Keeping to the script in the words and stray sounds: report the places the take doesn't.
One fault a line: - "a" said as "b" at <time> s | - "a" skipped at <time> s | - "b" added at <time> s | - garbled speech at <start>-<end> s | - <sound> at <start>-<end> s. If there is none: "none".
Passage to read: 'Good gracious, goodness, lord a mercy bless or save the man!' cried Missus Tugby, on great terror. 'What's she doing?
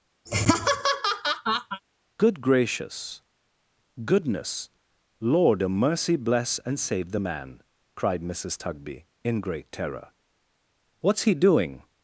- laugh at 0.3-1.8 s
- "or" said as "and" at 6.6 s
- "on" said as "in" at 9.2 s
- "she" said as "he" at 11.2 s